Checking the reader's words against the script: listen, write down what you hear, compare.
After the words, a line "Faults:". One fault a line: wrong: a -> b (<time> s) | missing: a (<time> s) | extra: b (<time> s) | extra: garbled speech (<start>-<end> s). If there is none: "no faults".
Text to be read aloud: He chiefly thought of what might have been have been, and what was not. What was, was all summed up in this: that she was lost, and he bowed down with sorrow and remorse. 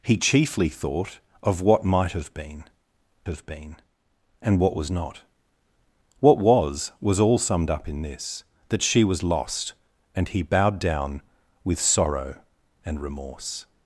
He chiefly thought of what might have been have been, and what was not. What was, was all summed up in this: that she was lost, and he bowed down with sorrow and remorse.
Faults:
no faults